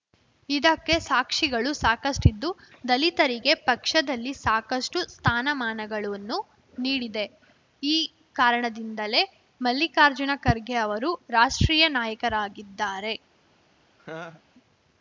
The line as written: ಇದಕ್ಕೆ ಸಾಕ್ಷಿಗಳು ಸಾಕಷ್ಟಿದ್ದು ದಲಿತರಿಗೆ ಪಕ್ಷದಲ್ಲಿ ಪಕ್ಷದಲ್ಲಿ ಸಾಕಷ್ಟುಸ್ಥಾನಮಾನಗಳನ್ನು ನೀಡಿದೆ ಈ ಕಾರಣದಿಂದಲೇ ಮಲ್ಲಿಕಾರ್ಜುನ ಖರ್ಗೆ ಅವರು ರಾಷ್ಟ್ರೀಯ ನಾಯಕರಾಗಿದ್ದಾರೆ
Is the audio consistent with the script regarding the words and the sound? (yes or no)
no